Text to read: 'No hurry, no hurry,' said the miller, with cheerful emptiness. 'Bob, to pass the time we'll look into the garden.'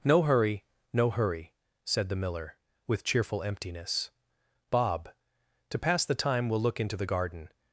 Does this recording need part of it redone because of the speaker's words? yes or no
no